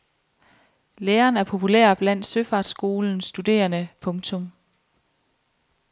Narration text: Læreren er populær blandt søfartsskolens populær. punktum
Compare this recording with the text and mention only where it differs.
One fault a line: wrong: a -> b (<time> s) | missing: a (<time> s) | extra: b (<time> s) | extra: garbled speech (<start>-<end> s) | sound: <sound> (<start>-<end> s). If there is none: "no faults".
wrong: populær -> studerende (3.2 s)